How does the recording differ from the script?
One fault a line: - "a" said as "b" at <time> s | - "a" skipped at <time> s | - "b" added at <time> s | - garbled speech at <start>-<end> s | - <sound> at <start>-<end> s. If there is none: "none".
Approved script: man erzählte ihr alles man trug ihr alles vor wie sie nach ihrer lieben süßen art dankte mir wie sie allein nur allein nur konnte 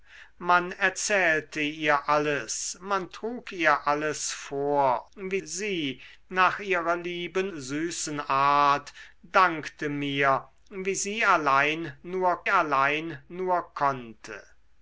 none